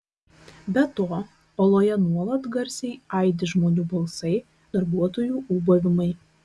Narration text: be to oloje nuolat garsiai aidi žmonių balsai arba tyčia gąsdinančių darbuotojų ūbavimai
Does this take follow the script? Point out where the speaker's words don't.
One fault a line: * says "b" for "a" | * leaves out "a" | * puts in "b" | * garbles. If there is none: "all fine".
* leaves out "arba tyčia gąsdinančių"